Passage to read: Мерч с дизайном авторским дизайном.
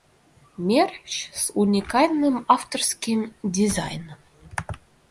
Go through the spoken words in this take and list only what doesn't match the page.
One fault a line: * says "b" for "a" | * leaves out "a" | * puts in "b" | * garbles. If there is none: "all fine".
* says "уникальным" for "дизайном"